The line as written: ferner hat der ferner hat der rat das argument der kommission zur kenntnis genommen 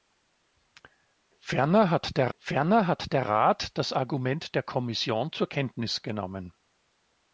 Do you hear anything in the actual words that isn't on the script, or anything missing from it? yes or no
no